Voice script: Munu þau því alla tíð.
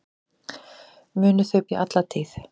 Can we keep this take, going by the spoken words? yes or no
yes